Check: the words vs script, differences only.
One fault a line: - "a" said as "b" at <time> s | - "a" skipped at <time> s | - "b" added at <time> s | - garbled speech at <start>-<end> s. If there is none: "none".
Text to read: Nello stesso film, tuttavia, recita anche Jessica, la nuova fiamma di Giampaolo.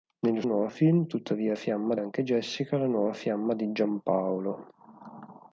- "stesso" said as "nuova" at 0.4 s
- "recita" said as "fiamma" at 1.5 s